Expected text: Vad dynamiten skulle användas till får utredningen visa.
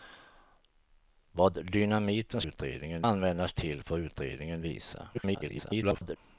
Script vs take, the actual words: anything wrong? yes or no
yes